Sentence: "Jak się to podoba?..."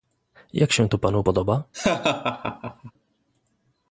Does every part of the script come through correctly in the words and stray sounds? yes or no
no